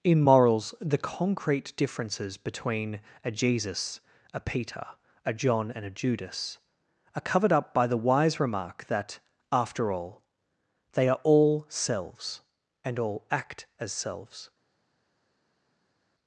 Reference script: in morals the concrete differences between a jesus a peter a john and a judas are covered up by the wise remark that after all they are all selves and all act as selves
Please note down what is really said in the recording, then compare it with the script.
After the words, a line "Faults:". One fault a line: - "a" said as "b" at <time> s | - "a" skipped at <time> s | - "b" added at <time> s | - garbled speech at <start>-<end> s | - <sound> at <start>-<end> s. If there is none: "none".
in morals the concrete differences between a jesus a peter a john and a judas are covered up by the wise remark that after all they are all selves and all act as selves
Faults:
none